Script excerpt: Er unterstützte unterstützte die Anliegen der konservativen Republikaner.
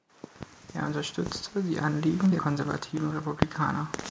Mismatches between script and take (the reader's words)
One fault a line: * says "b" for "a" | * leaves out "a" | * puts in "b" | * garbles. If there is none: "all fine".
* leaves out "unterstützte"